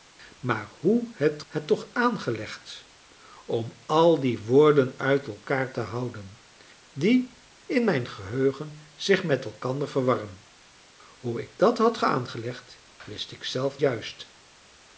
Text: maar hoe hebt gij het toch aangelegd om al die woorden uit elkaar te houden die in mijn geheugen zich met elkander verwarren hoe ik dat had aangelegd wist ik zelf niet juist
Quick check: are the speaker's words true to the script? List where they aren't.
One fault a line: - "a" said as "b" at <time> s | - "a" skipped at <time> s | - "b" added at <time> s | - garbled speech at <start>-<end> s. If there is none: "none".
- "gij" skipped at 1.4 s
- "niet" skipped at 13.8 s